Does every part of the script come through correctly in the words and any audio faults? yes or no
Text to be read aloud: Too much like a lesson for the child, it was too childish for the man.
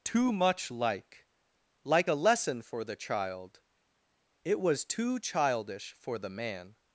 no